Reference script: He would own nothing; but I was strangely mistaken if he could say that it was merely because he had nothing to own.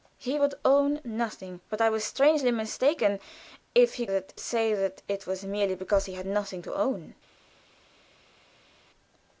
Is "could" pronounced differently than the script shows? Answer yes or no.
yes